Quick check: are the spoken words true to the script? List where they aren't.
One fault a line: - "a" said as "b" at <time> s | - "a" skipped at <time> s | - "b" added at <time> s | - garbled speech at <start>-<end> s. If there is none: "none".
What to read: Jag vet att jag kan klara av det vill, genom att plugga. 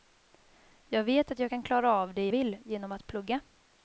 none